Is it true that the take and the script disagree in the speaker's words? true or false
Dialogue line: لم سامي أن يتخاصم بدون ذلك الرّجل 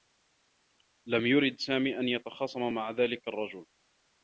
true